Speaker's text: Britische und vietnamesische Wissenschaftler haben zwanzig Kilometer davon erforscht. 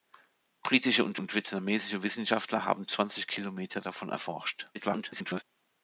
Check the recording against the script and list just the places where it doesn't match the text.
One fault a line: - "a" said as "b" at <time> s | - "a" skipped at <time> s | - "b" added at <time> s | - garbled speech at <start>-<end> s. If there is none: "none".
- "und" added at 1.2 s
- garbled speech at 4.7-5.4 s